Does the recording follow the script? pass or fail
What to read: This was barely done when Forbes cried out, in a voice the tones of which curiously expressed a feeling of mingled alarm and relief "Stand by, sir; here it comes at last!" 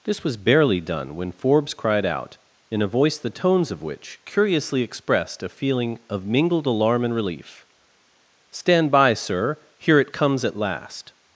pass